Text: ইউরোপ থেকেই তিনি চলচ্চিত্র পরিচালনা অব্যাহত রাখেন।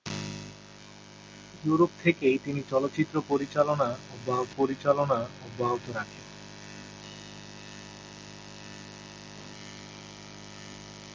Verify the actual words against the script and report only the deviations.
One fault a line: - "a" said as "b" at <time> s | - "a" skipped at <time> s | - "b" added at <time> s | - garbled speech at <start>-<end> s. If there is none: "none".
- "পরিচালনা অব্যাহত" added at 4.6 s